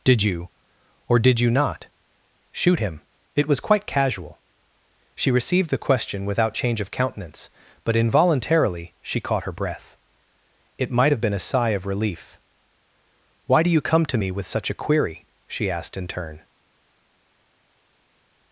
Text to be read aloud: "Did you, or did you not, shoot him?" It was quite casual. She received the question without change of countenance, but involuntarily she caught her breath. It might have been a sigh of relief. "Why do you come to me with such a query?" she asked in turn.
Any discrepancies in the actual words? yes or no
no